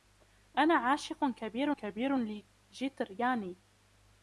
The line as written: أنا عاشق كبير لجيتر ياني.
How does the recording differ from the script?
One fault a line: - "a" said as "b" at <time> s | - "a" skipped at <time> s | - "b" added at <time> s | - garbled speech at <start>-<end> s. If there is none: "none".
- "كبير" added at 1.7 s